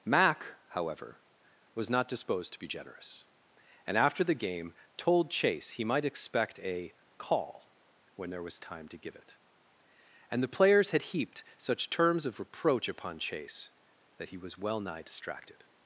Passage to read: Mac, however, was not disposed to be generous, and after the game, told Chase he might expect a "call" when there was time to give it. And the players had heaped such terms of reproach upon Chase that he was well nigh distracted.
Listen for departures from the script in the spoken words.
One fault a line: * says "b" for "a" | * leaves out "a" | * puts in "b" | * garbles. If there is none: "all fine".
all fine